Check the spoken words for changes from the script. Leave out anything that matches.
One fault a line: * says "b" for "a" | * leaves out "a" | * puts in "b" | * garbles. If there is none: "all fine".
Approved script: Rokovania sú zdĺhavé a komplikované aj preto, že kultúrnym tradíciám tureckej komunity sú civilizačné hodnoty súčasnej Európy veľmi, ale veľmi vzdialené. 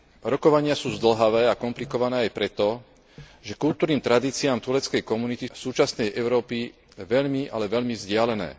* leaves out "sú civilizačné hodnoty"